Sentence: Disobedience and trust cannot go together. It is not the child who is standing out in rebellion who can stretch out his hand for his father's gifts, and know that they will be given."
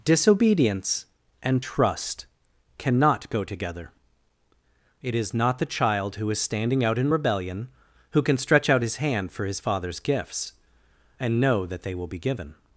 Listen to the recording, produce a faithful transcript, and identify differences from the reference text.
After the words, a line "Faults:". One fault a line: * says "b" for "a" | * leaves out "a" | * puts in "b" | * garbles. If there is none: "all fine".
Disobedience and trust cannot go together. It is not the child who is standing out in rebellion who can stretch out his hand for his father's gifts, and know that they will be given."
Faults:
all fine